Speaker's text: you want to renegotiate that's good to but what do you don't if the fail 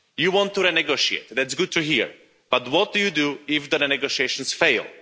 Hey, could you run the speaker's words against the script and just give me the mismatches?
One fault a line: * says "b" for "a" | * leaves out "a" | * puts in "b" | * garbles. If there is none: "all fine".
* puts in "hear"
* says "do" for "don't"
* puts in "negotiations"